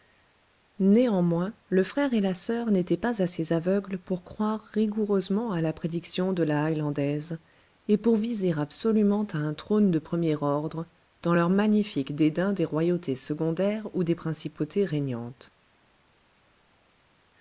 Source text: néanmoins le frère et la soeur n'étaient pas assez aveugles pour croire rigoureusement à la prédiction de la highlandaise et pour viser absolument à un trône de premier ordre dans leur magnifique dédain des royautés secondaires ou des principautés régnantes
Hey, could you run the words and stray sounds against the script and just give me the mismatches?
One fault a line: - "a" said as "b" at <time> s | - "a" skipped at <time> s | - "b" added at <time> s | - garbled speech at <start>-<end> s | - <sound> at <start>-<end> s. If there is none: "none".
none